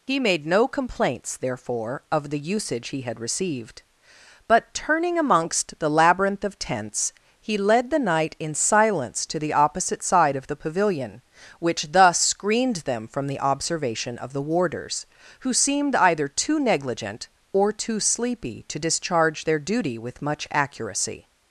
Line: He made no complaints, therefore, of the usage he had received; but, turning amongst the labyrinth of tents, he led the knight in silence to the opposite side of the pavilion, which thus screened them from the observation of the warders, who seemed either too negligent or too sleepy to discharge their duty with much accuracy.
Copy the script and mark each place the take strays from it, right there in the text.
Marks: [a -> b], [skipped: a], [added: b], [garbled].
He made no complaints, therefore, of the usage he had received; but, turning amongst the labyrinth of tents, he led the knight in silence to the opposite side of the pavilion, which thus screened them from the observation of the warders, who seemed either too negligent or too sleepy to discharge their duty with much accuracy.